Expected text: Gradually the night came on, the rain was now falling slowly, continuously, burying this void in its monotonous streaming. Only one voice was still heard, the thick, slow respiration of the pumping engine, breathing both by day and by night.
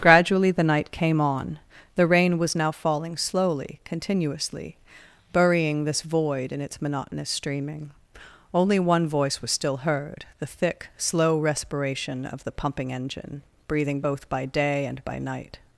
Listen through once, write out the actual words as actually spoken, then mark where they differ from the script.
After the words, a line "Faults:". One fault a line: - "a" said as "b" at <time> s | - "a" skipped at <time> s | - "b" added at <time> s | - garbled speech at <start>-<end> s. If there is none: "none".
Gradually the night came on, the rain was now falling slowly, continuously, burying this void in its monotonous streaming. Only one voice was still heard, the thick, slow respiration of the pumping engine, breathing both by day and by night.
Faults:
none